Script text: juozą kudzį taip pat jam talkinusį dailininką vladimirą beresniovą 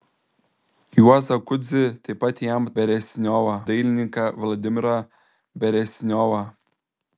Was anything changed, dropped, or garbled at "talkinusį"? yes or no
yes